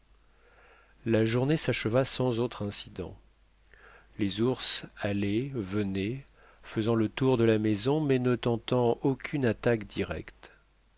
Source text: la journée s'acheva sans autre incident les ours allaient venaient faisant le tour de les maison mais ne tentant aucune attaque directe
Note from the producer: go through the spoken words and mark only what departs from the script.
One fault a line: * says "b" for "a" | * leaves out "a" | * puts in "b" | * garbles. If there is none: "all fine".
* says "la" for "les"